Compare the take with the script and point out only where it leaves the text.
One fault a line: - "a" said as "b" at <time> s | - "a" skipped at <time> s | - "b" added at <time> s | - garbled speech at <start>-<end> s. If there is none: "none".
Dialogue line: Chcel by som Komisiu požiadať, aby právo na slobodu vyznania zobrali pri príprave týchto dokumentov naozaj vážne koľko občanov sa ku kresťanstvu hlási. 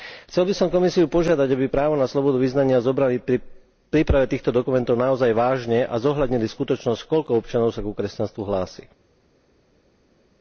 - "a zohľadnili skutočnosť" added at 5.8 s